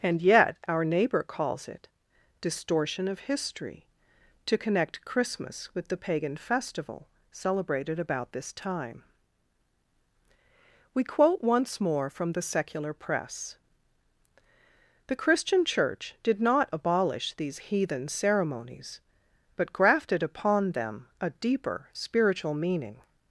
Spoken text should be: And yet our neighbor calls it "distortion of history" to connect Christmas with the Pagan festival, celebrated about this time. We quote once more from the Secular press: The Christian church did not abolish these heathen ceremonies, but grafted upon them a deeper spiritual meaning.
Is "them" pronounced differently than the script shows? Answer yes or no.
no